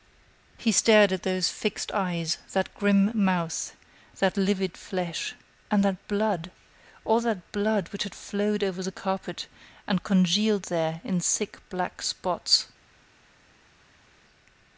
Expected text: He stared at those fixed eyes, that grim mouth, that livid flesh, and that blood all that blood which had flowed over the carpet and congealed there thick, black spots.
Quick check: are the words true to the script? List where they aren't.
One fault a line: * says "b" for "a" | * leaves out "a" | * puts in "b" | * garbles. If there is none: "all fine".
* puts in "in"